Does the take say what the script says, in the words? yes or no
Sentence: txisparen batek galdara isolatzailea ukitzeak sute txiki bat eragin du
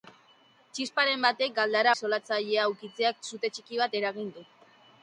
yes